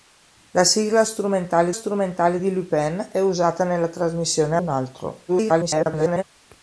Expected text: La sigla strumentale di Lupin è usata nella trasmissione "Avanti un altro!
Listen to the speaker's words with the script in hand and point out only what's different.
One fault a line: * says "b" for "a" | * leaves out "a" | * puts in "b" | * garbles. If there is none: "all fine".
* puts in "strumentale"
* leaves out "Avanti"
* garbles